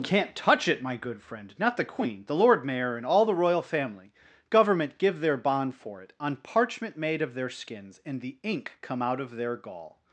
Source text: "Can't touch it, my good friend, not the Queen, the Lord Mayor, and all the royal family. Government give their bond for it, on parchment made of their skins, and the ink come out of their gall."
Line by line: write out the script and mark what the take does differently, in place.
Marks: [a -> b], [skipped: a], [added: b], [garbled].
"Can't touch it, my good friend, not the Queen, the Lord Mayor, and all the royal family. Government give their bond for it, on parchment made of their skins, and the ink come out of their gall."